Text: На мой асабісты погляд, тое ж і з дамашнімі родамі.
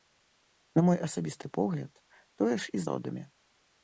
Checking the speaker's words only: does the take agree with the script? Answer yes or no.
no